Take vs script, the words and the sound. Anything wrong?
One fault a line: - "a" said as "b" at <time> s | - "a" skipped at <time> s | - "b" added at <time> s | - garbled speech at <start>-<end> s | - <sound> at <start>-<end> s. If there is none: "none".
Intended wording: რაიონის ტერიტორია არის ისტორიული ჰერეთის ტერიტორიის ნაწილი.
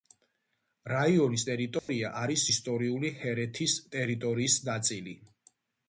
- dropout at 1.8-1.9 s